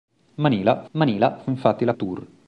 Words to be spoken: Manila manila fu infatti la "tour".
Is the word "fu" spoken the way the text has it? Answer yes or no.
yes